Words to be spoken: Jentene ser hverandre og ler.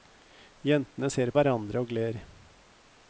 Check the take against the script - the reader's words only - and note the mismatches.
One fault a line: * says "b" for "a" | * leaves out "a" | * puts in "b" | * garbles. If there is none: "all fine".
all fine